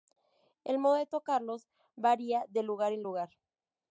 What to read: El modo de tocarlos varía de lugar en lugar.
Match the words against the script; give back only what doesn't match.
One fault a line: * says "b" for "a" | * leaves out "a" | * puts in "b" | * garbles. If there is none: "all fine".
all fine